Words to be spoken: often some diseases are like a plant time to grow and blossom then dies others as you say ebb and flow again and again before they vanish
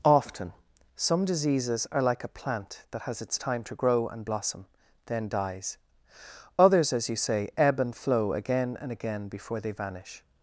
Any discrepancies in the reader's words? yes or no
yes